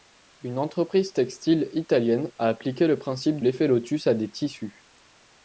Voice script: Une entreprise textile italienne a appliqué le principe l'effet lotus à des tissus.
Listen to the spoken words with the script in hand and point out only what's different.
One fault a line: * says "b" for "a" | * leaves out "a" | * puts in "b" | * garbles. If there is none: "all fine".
all fine